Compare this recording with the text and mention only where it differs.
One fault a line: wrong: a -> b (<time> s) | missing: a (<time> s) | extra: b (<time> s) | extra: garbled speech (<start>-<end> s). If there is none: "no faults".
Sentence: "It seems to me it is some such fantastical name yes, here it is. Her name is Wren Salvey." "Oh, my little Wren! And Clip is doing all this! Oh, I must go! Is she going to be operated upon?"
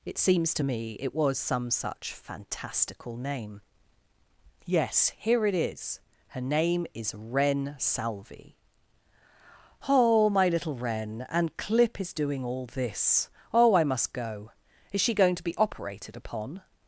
wrong: is -> was (1.1 s)